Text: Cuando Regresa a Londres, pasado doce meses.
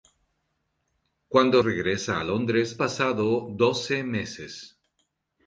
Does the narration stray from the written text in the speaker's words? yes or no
no